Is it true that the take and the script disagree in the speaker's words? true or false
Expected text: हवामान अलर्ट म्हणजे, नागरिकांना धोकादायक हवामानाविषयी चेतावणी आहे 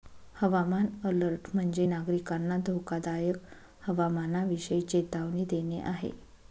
true